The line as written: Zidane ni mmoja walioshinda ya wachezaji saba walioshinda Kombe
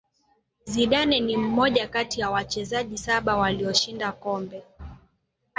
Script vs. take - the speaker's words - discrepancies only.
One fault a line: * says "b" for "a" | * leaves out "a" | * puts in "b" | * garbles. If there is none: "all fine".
* says "kati" for "walioshinda"